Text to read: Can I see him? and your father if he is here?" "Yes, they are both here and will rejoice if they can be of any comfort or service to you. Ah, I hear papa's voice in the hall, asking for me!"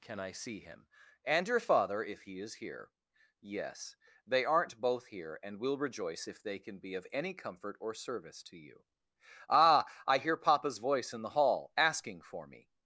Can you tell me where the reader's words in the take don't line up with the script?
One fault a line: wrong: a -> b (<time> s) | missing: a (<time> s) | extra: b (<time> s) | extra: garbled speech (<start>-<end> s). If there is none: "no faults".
wrong: are -> aren't (4.4 s)